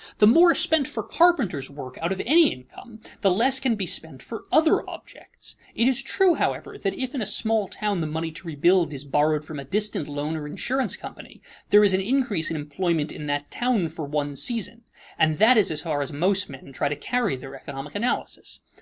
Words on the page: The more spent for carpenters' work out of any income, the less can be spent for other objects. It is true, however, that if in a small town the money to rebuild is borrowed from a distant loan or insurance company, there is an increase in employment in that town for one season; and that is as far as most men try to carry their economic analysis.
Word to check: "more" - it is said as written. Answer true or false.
true